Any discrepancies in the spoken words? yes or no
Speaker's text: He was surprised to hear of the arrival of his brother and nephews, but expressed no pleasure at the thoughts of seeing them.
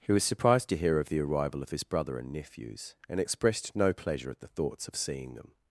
yes